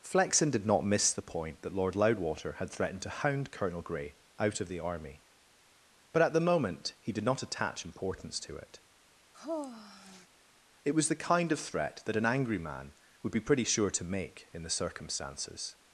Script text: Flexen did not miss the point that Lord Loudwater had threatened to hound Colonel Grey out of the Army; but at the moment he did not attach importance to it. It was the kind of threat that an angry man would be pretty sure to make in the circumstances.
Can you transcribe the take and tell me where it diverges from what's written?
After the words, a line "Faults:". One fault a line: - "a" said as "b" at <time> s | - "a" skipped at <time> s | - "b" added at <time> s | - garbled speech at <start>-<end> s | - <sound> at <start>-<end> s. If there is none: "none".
Flexen did not miss the point that Lord Loudwater had threatened to hound Colonel Grey out of the Army; but at the moment he did not attach importance to it. It was the kind of threat that an angry man would be pretty sure to make in the circumstances.
Faults:
- sigh at 9.3-10.3 s